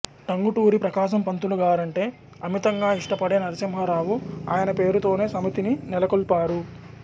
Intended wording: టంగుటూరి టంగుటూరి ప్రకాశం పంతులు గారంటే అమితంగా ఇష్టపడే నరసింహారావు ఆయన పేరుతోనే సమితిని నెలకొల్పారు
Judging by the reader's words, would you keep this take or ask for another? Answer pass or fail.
fail